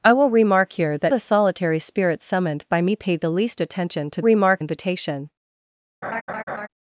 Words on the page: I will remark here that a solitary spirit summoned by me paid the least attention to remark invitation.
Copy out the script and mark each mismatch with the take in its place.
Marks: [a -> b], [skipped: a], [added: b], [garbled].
I will remark here that a solitary spirit summoned by me paid the least attention to remark invitation.